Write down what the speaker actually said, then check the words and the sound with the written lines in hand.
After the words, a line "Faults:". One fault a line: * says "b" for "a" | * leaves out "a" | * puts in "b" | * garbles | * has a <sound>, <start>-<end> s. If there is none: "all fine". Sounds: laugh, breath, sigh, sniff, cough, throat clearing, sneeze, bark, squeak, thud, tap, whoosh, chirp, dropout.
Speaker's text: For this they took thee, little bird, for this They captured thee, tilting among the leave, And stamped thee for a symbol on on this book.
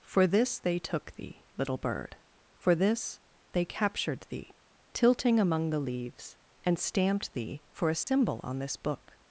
For this they took thee, little bird, for this They captured thee, tilting among the leaves, And stamped thee for a symbol on this book.
Faults:
* says "leaves" for "leave"
* has a dropout, 8.0-8.1 s
* leaves out "on"